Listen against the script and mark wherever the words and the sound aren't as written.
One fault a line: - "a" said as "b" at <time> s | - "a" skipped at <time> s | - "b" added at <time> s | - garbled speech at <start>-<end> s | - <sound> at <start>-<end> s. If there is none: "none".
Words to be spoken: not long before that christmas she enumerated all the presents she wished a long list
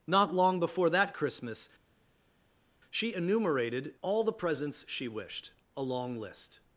none